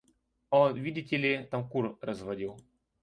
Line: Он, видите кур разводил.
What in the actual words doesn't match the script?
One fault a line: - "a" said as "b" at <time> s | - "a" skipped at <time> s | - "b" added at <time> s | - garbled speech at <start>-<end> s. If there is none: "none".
- "ли там" added at 1.1 s